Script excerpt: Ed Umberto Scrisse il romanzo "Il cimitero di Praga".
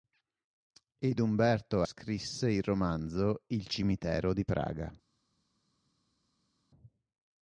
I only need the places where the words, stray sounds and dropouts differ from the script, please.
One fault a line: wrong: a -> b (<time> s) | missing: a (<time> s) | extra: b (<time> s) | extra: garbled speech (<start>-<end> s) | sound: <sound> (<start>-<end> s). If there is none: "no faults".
no faults